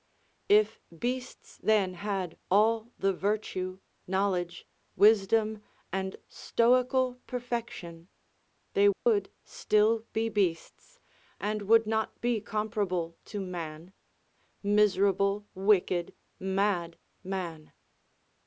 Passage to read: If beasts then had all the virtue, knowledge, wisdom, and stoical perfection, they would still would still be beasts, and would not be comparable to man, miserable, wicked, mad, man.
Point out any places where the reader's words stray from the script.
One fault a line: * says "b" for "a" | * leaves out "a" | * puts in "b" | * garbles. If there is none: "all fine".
* leaves out "would still"